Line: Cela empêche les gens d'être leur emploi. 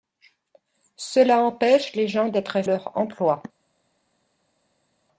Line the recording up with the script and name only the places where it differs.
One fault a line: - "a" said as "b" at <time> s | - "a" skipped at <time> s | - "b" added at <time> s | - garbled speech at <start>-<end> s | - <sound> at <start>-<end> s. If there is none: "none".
none